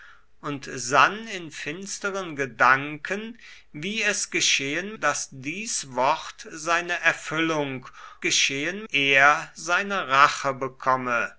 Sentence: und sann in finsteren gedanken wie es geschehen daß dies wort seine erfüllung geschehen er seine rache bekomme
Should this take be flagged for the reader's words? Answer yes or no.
no